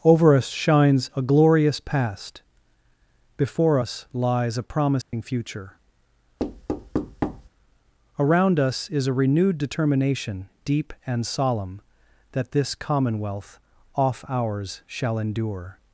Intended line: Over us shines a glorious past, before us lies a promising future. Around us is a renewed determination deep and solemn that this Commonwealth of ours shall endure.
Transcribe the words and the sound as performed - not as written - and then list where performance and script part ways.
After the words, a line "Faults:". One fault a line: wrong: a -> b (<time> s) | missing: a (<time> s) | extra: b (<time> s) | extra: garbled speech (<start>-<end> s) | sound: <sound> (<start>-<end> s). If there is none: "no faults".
Over us shines a glorious past, before us lies a promising future. Around us is a renewed determination deep and solemn that this Commonwealth off ours shall endure.
Faults:
sound: dropout (5.0-5.1 s)
sound: thud (6.4-7.5 s)
wrong: of -> off (13.9 s)